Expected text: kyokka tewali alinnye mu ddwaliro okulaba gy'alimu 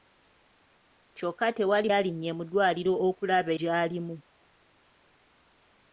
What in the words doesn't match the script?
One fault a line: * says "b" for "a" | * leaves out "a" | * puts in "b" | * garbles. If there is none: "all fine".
all fine